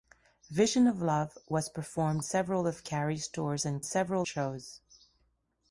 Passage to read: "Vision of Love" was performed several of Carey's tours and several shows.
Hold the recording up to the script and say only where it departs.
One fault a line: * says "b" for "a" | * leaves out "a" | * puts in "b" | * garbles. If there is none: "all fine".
all fine